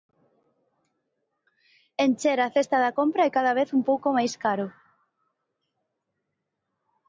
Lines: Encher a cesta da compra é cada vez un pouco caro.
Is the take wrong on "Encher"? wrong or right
right